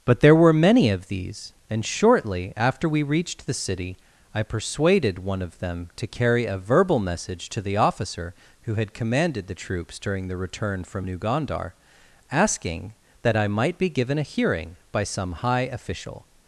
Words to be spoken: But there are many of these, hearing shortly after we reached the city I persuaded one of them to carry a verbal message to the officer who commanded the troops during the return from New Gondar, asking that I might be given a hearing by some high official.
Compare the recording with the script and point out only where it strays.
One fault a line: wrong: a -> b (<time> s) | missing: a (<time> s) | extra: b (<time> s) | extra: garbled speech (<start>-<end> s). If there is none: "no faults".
wrong: are -> were (0.3 s)
wrong: hearing -> and (1.7 s)
extra: had (8.8 s)